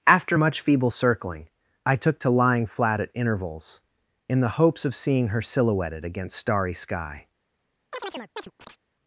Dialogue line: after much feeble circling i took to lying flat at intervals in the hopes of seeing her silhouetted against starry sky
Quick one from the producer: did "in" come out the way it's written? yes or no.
yes